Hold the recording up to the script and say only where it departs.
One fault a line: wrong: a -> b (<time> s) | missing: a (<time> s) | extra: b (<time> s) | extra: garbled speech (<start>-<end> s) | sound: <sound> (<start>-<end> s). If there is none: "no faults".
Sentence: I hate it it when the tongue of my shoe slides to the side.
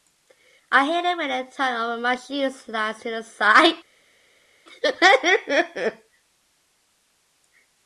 missing: it (1.2 s)